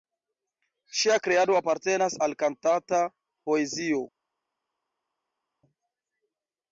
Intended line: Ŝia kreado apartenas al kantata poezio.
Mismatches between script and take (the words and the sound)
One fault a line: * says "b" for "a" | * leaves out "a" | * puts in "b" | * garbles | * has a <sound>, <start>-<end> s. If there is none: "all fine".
all fine